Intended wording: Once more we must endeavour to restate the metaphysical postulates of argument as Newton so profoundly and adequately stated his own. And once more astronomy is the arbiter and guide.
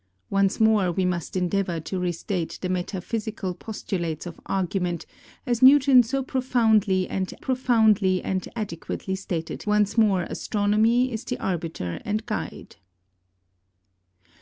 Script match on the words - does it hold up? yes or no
no